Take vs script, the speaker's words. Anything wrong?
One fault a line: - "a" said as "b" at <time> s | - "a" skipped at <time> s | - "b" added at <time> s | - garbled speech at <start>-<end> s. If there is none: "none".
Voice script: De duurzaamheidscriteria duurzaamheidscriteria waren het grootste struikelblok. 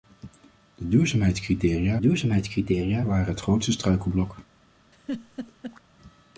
none